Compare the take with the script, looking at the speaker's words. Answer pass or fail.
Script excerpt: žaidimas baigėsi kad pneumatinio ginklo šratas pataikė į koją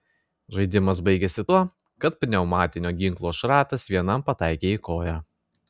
fail